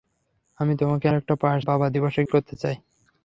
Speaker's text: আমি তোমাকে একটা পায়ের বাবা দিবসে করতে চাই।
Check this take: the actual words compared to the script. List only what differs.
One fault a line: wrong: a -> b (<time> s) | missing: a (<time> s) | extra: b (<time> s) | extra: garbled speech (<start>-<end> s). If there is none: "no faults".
no faults